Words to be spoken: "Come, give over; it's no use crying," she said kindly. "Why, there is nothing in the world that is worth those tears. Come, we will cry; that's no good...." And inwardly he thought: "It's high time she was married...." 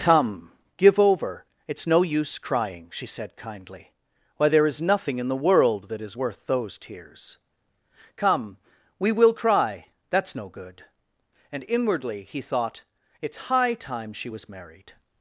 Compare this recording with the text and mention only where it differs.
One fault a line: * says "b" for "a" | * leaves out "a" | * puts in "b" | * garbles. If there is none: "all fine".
all fine